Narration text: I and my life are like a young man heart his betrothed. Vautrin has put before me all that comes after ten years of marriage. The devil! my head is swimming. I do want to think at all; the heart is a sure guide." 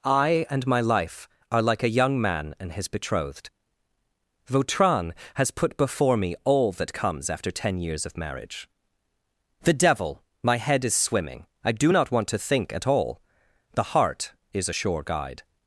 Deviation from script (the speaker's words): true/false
true